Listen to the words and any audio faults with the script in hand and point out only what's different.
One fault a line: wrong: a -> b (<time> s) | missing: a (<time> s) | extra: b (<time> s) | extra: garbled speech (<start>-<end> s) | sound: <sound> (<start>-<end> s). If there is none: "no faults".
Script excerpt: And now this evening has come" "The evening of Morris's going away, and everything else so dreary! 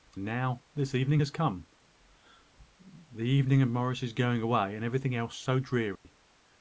sound: dropout (6.0-6.1 s)